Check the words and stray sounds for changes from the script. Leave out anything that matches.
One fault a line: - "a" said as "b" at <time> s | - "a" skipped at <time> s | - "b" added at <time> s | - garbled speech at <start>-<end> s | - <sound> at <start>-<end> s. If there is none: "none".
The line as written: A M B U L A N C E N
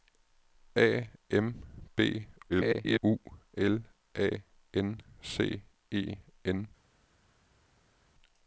- garbled speech at 2.5-3.0 s